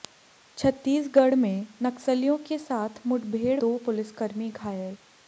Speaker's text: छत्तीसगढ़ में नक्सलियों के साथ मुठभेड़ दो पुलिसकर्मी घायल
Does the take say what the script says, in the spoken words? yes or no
yes